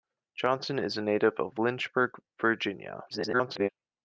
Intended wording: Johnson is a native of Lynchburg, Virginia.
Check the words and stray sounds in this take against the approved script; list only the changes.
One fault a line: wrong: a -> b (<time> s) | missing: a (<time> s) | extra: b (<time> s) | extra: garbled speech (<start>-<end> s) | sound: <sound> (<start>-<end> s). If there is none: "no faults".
extra: garbled speech (3.1-3.7 s)